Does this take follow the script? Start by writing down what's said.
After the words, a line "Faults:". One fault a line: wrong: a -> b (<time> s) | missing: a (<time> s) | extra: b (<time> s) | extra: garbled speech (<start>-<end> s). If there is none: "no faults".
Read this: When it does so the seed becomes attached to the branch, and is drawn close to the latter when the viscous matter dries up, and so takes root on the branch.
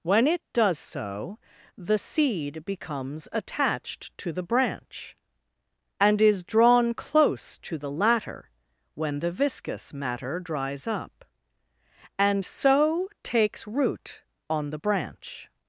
When it does so the seed becomes attached to the branch, and is drawn close to the latter when the viscous matter dries up, and so takes root on the branch.
Faults:
no faults